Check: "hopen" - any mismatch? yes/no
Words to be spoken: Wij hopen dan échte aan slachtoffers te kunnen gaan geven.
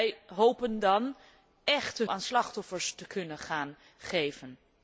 no